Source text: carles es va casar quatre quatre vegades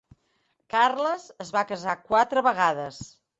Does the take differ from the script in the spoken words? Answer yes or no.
yes